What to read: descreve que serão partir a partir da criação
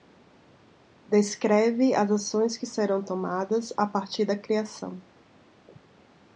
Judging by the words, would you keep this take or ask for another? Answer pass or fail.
fail